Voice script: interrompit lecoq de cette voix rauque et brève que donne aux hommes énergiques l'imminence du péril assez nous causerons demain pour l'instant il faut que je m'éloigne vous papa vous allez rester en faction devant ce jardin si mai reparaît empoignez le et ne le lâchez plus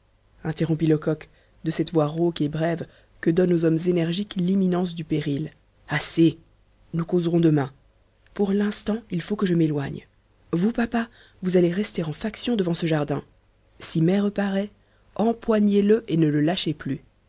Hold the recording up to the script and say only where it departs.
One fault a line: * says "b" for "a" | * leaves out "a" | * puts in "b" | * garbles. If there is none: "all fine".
all fine